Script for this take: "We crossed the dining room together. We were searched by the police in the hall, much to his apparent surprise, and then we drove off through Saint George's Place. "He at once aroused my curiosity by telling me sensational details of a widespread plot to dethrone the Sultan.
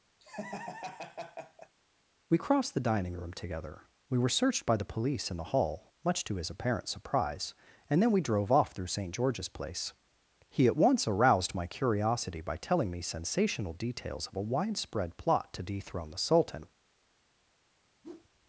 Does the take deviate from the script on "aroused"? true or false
false